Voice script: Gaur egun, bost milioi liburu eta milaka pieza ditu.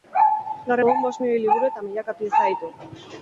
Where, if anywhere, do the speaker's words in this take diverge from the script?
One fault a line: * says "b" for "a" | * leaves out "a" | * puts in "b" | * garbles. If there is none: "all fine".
all fine